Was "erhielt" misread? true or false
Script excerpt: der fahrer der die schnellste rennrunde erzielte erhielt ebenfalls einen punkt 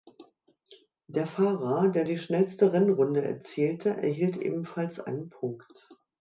false